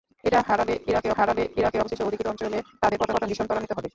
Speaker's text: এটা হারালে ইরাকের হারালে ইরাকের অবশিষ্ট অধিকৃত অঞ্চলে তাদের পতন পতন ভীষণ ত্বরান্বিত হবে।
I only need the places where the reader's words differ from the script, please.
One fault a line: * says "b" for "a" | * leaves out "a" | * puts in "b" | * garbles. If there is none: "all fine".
all fine